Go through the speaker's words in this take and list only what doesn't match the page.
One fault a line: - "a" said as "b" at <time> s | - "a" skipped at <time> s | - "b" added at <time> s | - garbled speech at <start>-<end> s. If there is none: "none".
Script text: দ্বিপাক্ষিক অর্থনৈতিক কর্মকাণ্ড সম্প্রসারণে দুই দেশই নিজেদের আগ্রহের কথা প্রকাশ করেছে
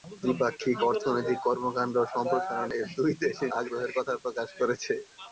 - "নিজেদের" skipped at 3.5 s